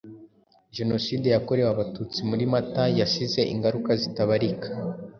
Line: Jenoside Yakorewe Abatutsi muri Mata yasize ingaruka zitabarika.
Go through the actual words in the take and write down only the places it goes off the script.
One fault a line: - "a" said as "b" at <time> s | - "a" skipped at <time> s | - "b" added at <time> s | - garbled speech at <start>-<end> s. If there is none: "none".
none